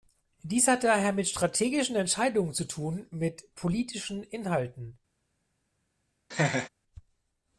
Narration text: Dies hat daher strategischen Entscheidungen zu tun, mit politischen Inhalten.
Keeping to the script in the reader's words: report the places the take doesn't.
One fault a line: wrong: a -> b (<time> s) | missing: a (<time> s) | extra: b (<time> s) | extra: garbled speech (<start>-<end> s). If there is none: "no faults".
extra: mit (1.1 s)